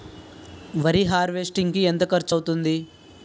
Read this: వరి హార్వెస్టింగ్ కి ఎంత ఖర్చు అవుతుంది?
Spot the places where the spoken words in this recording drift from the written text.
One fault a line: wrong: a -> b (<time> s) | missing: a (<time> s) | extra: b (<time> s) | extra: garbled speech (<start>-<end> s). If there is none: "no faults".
no faults